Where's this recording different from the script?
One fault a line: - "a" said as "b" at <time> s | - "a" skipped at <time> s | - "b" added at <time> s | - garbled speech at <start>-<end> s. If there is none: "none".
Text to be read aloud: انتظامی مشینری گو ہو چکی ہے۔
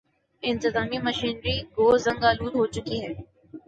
- "زنگ آلود" added at 2.0 s